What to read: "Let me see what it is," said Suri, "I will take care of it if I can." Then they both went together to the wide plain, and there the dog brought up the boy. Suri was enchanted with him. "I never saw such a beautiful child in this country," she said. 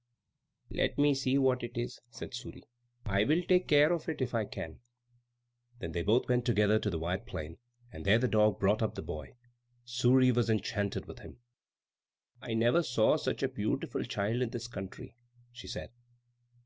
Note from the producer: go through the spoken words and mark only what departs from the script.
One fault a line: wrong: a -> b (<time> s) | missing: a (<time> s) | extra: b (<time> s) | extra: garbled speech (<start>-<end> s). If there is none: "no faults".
no faults